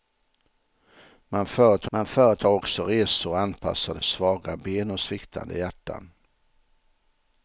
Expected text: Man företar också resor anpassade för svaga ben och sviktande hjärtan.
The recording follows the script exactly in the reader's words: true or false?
false